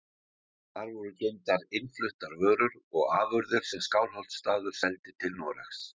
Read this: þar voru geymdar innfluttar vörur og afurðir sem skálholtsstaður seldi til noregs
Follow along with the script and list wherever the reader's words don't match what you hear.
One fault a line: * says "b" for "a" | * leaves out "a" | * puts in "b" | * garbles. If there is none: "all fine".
all fine